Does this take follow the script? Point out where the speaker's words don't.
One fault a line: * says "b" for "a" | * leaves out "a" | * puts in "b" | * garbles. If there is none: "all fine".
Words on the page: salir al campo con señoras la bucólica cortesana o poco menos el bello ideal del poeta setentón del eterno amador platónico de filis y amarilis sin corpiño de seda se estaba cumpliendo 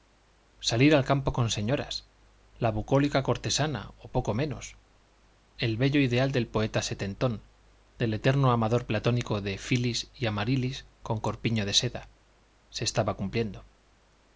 * says "con" for "sin"